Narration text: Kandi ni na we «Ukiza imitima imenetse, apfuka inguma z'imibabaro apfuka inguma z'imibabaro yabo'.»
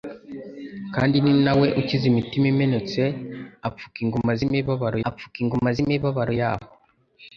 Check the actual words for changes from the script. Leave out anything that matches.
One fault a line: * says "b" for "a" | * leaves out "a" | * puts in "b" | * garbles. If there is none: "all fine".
all fine